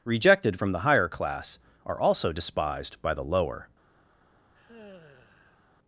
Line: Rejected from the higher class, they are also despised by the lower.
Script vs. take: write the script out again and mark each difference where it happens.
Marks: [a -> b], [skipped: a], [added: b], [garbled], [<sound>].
Rejected from the higher class, [skipped: they] are also despised by the lower. [sigh]